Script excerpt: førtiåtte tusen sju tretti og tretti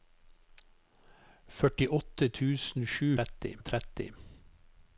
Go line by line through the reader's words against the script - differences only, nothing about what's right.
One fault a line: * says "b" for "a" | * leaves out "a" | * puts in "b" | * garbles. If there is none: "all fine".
all fine